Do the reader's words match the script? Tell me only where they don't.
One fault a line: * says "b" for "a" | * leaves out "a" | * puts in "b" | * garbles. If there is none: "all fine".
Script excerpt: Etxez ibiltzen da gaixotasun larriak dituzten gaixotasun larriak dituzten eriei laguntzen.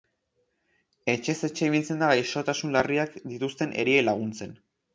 * puts in "etxe"
* leaves out "gaixotasun larriak dituzten"